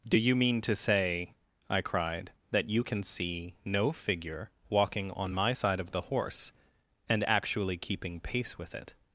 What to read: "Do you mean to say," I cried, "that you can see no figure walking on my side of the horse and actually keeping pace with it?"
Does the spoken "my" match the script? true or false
true